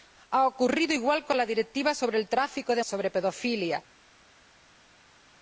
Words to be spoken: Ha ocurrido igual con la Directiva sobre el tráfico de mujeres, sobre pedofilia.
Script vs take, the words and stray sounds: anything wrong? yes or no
yes